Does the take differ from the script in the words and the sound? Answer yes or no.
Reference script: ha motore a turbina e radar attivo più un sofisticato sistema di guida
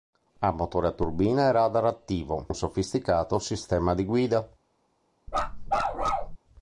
yes